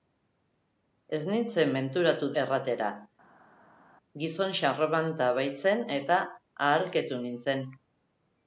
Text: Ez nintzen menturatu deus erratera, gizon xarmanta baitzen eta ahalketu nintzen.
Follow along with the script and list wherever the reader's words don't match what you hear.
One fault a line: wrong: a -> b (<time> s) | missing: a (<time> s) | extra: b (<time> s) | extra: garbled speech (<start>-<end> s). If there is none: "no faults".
missing: deus (2.3 s)